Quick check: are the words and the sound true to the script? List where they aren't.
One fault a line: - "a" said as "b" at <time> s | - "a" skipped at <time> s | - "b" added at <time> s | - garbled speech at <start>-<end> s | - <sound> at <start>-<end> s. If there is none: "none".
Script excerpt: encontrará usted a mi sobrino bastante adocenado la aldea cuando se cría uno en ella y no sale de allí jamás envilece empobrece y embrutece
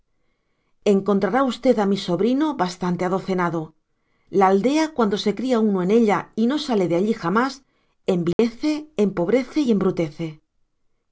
- dropout at 8.3-8.4 s